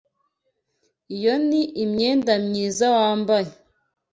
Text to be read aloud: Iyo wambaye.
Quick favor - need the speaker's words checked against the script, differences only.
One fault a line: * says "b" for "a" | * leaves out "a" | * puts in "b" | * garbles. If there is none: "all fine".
* puts in "ni imyenda myiza"